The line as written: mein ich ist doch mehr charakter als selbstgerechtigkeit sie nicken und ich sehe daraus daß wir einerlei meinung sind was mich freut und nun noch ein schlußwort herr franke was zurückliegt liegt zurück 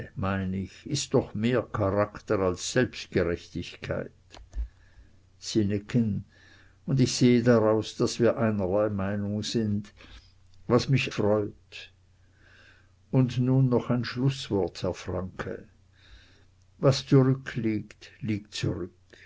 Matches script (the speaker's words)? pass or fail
pass